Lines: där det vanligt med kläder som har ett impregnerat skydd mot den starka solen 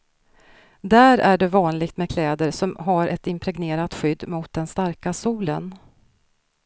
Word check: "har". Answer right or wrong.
right